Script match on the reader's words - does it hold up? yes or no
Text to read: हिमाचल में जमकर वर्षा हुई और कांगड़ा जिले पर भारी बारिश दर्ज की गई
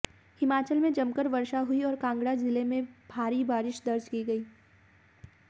no